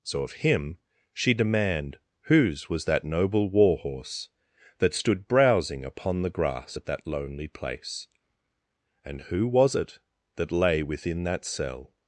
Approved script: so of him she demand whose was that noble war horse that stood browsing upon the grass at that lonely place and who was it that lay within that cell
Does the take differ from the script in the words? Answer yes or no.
no